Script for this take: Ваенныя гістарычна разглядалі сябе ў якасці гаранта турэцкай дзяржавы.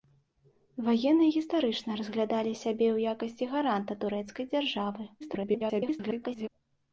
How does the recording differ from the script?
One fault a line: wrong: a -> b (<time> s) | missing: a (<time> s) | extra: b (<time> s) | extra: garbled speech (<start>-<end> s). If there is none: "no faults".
extra: garbled speech (5.2-6.5 s)